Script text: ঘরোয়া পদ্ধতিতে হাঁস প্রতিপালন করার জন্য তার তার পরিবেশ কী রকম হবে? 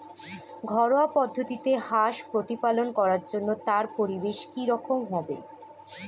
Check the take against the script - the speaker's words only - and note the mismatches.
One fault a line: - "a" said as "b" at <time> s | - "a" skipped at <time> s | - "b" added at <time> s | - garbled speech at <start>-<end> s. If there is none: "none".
- "তার" skipped at 3.8 s